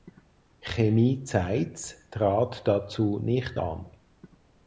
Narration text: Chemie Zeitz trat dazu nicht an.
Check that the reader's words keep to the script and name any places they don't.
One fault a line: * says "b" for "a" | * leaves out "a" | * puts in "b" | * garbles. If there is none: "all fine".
all fine